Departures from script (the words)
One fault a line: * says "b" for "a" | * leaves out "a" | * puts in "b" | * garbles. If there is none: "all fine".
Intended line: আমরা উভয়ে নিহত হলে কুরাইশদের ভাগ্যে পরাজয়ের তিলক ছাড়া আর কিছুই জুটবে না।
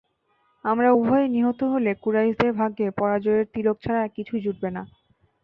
all fine